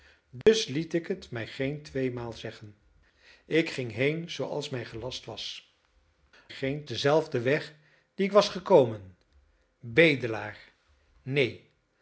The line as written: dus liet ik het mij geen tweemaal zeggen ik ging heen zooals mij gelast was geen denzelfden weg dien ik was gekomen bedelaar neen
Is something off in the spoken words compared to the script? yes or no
no